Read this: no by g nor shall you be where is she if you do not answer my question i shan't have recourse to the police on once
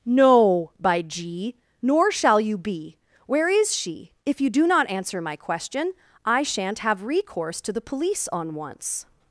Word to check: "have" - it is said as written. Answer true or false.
true